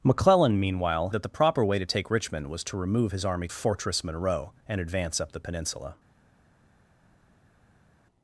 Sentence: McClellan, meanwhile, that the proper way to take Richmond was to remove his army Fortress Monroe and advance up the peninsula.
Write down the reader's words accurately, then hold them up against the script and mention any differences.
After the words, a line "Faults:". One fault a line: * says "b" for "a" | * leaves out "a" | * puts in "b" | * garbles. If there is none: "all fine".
McClellan, meanwhile, that the proper way to take Richmond was to remove his army Fortress Monroe and advance up the peninsula.
Faults:
all fine